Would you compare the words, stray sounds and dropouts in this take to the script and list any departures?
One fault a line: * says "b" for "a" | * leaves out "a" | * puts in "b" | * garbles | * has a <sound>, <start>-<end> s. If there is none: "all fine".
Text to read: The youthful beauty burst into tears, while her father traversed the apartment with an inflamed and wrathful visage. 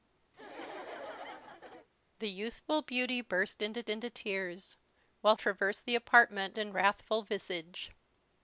* has a laugh, 0.3-1.9 s
* puts in "into"
* leaves out "her father"
* leaves out "with an inflamed"